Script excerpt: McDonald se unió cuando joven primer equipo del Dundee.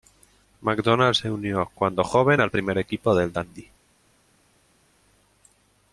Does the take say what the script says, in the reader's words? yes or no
no